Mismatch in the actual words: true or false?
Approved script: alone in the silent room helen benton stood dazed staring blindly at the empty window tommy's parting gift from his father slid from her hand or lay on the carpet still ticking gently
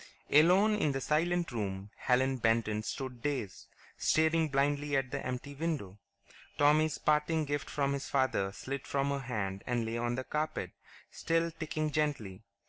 true